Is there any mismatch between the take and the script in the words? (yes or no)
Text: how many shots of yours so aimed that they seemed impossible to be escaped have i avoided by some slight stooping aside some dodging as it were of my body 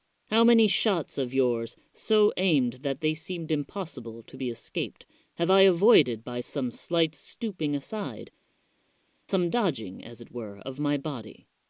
no